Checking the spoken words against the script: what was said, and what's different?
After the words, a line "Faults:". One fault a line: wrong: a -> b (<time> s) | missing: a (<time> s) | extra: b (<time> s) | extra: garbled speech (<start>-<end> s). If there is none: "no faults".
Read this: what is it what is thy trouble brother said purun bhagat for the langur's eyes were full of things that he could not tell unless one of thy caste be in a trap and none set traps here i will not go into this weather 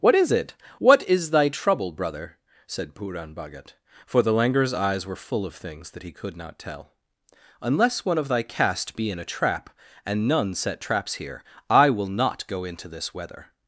what is it what is thy trouble brother said purun bhagat for the langur's eyes were full of things that he could not tell unless one of thy caste be in a trap and none set traps here i will not go into this weather
Faults:
no faults